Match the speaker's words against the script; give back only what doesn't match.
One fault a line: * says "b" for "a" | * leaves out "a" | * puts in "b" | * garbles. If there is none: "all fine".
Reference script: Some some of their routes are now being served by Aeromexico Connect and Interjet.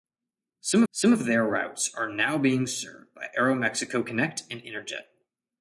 all fine